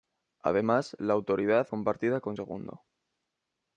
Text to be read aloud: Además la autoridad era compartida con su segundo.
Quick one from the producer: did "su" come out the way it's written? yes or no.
no